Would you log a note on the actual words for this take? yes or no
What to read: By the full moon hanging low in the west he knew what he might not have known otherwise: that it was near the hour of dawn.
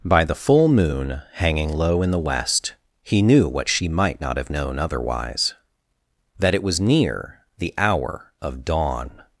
yes